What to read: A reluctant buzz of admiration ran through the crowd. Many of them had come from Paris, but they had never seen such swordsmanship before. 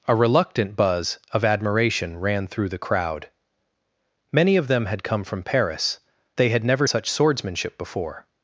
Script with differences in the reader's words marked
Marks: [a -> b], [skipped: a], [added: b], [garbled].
A reluctant buzz of admiration ran through the crowd. Many of them had come from Paris, [skipped: but] they had never [skipped: seen] such swordsmanship before.